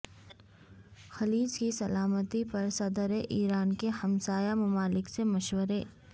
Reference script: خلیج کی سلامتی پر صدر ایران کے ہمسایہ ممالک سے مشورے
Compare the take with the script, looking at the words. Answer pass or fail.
pass